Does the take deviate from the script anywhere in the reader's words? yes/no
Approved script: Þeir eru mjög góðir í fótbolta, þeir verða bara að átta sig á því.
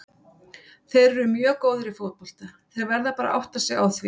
no